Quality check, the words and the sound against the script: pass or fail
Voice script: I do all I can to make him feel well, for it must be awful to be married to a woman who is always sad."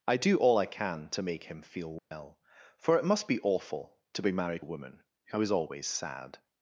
fail